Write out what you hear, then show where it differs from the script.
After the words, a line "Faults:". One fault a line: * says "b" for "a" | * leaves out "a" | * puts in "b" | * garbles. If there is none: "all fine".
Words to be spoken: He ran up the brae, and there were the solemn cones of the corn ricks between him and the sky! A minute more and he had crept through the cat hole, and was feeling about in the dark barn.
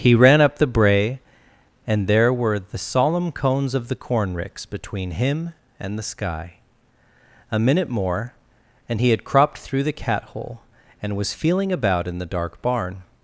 He ran up the brae, and there were the solemn cones of the corn ricks between him and the sky! A minute more and he had cropped through the cat hole, and was feeling about in the dark barn.
Faults:
* says "cropped" for "crept"